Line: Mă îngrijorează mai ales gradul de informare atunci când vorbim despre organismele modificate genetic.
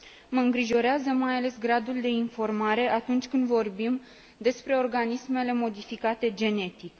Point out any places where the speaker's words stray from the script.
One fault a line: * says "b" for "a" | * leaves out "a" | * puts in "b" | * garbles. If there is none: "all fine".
all fine